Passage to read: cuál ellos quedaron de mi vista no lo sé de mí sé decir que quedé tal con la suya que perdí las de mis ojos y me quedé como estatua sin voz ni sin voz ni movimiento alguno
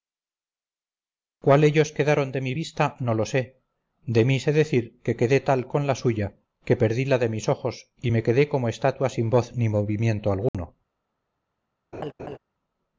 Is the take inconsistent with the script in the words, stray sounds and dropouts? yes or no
yes